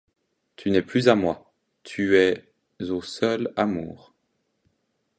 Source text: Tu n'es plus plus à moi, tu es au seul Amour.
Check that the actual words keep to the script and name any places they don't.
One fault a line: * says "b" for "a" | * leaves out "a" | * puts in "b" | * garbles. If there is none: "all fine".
* leaves out "plus"